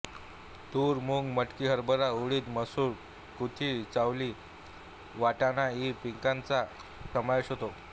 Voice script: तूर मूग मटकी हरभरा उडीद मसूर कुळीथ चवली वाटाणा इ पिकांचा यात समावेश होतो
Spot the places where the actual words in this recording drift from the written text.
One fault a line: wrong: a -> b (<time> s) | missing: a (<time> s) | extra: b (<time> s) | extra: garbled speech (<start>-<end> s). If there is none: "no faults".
missing: यात (6.6 s)